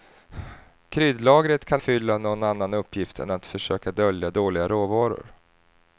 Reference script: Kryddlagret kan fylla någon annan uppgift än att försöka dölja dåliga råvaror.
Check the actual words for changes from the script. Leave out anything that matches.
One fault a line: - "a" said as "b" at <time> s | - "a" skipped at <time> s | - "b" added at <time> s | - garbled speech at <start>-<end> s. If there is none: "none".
none